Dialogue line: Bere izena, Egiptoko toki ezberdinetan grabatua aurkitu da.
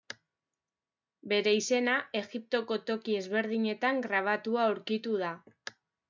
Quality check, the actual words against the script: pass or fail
pass